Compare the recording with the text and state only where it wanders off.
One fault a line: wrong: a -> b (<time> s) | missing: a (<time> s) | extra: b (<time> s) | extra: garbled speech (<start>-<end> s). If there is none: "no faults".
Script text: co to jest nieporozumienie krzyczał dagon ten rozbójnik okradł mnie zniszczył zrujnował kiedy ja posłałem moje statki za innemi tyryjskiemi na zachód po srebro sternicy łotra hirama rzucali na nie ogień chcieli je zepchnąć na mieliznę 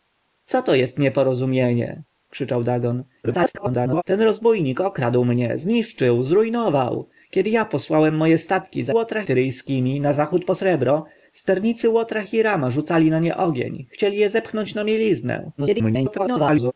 extra: garbled speech (3.2-4.0 s)
wrong: innemi -> łotra (8.9 s)
extra: garbled speech (15.6-16.7 s)